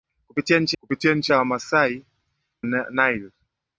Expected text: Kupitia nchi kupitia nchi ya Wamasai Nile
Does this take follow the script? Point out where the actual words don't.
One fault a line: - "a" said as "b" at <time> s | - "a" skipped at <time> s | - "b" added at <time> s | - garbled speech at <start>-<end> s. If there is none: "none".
none